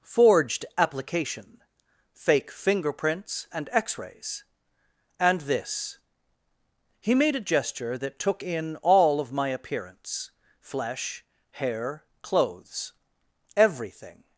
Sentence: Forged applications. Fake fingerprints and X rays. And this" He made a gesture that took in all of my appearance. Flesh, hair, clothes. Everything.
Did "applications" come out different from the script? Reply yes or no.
yes